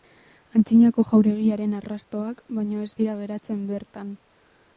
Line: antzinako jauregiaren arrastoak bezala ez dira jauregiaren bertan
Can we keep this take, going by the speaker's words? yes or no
no